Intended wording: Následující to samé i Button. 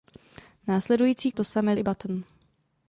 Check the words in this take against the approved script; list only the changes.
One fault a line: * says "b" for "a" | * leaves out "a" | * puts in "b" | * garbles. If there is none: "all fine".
all fine